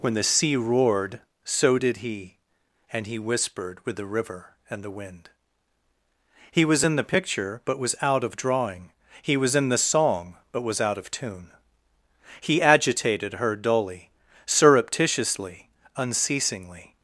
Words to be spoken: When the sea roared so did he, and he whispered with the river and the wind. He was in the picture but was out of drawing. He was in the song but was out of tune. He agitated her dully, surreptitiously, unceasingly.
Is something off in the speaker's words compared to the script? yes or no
no